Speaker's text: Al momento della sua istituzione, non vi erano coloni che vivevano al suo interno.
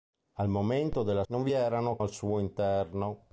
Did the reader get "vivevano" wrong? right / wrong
wrong